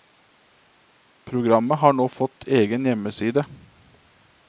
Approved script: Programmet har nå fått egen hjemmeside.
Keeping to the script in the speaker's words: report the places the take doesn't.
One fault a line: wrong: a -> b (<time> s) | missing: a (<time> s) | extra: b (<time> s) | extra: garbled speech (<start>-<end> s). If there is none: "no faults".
no faults